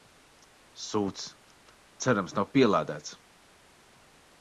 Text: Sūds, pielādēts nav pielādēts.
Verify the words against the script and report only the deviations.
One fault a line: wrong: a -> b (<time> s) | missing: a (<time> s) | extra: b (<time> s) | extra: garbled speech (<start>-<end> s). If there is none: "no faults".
wrong: pielādēts -> cerams (2.1 s)